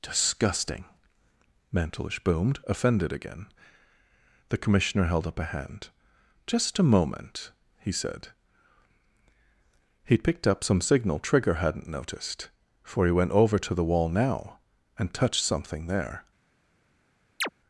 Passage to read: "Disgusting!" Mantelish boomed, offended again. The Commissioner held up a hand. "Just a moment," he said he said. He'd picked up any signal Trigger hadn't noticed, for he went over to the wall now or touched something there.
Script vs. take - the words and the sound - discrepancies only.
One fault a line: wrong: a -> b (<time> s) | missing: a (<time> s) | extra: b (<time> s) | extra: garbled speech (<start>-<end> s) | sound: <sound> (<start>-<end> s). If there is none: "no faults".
missing: he said (8.3 s)
wrong: any -> some (10.6 s)
wrong: or -> and (15.0 s)
sound: chirp (17.4-17.5 s)